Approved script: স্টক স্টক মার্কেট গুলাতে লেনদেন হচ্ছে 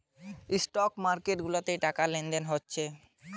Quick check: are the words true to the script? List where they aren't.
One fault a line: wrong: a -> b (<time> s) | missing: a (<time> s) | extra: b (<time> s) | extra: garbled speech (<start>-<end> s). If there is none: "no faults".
missing: স্টক (0.9 s)
extra: টাকা (1.9 s)